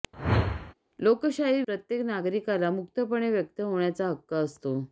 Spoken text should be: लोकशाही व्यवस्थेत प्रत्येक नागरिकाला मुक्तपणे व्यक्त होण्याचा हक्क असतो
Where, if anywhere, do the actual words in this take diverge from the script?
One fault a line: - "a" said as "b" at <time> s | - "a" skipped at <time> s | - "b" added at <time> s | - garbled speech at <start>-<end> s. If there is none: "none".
- "व्यवस्थेत" skipped at 1.6 s